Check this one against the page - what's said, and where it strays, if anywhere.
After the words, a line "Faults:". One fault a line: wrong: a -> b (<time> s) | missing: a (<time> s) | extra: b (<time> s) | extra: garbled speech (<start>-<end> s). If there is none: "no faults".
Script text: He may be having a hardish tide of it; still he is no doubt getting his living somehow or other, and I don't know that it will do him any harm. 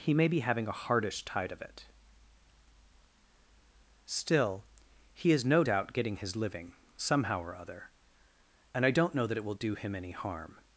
He may be having a hardish tide of it; still he is no doubt getting his living somehow or other, and I don't know that it will do him any harm.
Faults:
no faults